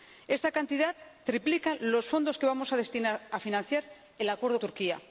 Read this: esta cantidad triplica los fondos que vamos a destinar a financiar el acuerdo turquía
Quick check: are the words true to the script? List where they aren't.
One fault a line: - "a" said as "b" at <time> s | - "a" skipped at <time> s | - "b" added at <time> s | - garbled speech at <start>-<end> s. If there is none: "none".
none